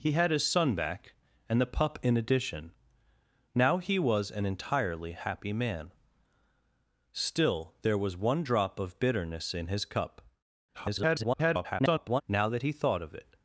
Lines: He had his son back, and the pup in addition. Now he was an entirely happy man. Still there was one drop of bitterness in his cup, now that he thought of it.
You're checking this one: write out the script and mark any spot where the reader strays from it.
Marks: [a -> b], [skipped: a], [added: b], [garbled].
He had his son back, and the pup in addition. Now he was an entirely happy man. Still there was one drop of bitterness in his cup, [garbled] now that he thought of it.